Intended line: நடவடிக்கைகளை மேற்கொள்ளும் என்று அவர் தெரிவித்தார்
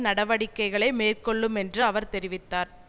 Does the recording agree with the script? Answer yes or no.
yes